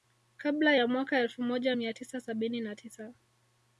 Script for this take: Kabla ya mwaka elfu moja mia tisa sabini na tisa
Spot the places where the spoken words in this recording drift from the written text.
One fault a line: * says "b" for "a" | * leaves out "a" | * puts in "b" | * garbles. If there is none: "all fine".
all fine